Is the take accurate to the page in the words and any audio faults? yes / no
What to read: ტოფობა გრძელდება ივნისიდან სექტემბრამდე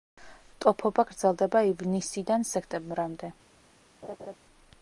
no